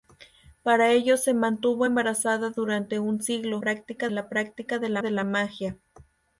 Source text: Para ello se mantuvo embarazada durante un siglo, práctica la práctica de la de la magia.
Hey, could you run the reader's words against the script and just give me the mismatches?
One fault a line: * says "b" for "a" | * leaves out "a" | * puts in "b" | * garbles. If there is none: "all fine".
all fine